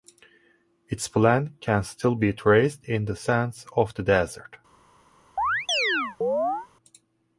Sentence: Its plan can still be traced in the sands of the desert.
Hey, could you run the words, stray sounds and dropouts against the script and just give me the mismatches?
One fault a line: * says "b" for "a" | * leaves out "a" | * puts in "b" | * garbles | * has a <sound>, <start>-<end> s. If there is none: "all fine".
* has a chirp, 5.4-6.7 s